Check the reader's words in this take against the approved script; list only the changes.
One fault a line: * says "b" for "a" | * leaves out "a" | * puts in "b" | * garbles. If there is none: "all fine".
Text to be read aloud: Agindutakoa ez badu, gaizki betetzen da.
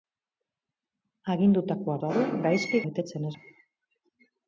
all fine